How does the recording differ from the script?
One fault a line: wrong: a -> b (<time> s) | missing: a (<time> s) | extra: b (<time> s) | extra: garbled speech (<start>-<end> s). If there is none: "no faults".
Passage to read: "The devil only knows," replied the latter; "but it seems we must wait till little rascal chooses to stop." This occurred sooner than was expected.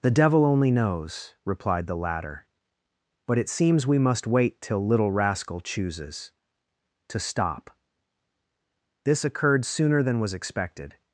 no faults